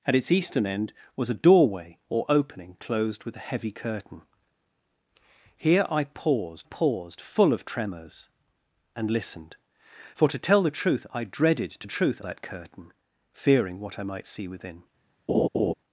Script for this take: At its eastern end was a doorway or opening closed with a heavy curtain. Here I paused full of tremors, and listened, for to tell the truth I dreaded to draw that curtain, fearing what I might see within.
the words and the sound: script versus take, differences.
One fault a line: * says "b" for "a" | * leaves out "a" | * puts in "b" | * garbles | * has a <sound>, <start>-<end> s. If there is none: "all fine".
* puts in "paused"
* says "truth" for "draw"
* has a laugh, 15.3-15.7 s